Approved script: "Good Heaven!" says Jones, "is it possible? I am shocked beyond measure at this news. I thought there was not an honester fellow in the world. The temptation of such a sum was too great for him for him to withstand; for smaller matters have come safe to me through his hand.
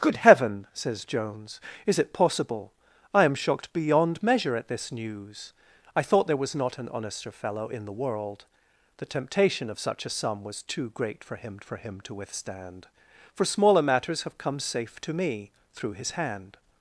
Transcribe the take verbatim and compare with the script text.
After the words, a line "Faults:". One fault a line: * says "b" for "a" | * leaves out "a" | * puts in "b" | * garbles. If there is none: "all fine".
"Good Heaven!" says Jones, "is it possible? I am shocked beyond measure at this news. I thought there was not an honester fellow in the world. The temptation of such a sum was too great for him for him to withstand; for smaller matters have come safe to me through his hand.
Faults:
all fine